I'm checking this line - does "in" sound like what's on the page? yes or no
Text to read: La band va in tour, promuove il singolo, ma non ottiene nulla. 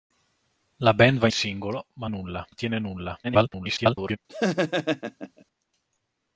no